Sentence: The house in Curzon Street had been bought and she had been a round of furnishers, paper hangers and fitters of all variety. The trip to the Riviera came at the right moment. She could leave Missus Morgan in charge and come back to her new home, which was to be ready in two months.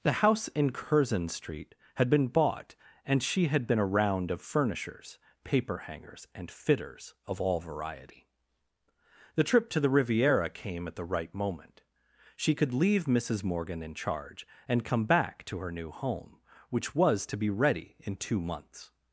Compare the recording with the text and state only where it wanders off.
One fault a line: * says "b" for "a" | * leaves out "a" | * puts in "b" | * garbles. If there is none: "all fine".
all fine